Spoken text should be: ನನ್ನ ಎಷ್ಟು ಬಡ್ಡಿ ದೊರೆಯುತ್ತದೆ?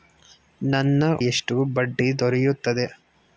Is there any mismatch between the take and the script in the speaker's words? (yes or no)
no